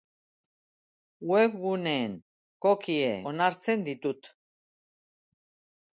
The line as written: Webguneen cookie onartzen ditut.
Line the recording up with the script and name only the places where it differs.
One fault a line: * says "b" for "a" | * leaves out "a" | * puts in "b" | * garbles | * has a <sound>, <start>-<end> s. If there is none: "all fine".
all fine